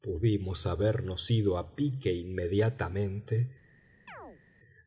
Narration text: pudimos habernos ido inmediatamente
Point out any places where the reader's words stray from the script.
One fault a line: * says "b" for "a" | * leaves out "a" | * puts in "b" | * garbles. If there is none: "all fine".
* puts in "a pique"